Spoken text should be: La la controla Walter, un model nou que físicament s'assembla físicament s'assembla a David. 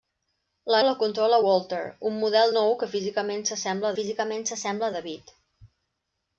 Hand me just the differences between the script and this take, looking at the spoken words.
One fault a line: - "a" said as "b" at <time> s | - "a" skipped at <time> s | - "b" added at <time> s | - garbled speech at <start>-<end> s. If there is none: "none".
none